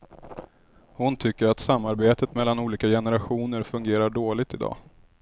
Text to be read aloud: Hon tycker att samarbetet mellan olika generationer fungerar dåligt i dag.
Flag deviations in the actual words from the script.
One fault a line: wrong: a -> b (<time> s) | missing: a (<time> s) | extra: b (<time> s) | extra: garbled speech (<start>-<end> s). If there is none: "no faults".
no faults